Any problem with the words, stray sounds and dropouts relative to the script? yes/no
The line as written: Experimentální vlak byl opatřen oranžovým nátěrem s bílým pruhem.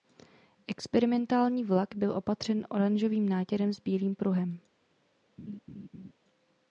yes